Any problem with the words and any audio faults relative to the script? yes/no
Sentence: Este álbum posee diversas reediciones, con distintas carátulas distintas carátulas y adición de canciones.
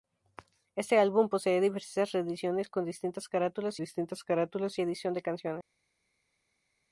no